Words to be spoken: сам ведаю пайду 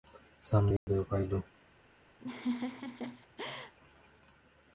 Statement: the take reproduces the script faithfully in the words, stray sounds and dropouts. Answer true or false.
false